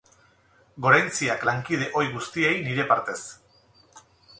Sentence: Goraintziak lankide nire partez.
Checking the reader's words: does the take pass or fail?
fail